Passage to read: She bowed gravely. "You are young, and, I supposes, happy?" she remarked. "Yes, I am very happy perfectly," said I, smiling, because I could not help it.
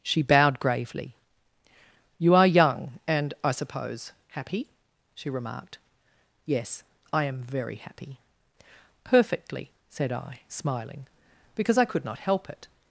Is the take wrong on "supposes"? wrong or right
wrong